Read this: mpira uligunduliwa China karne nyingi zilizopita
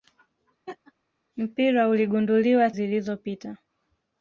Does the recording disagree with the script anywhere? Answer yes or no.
yes